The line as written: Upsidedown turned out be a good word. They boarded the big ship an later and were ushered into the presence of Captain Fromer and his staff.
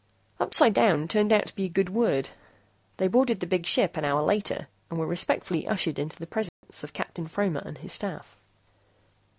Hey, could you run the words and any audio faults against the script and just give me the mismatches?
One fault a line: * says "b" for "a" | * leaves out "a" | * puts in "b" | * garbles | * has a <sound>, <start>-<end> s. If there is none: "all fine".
* puts in "to"
* puts in "hour"
* puts in "respectfully"
* has a dropout, 6.5-6.6 s